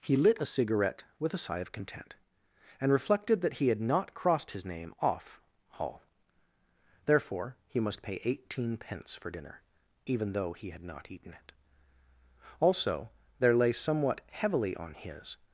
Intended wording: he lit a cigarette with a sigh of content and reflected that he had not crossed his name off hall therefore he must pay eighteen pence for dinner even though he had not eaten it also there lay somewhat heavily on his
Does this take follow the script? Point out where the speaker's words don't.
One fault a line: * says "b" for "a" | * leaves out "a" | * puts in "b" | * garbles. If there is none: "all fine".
all fine